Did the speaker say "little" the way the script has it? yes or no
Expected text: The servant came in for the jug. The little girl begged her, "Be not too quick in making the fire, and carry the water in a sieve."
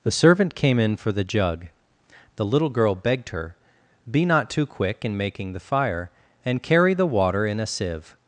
yes